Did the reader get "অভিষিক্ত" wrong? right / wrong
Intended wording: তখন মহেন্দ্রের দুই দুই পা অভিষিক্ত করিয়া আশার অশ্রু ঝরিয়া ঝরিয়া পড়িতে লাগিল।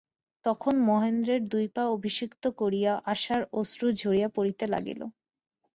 right